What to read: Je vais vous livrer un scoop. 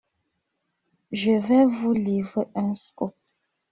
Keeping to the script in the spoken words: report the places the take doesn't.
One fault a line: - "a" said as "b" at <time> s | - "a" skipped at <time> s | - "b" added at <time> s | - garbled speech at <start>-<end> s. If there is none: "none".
none